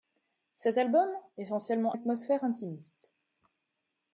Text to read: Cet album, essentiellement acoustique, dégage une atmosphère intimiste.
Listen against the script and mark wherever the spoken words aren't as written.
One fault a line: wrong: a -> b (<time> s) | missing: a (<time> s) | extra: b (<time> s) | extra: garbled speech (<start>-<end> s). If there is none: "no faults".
missing: acoustique dégage une (1.9 s)